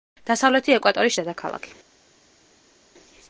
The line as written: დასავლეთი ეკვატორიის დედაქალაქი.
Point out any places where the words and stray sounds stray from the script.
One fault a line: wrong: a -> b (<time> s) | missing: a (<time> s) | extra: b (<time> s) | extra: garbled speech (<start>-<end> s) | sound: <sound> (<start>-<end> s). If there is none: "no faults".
no faults